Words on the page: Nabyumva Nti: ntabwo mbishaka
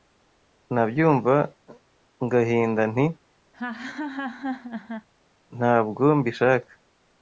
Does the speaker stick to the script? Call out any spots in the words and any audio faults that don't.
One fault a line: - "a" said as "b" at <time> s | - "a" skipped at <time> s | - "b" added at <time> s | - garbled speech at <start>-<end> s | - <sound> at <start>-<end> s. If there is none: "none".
- "ngahinda" added at 2.2 s
- laugh at 3.5-5.1 s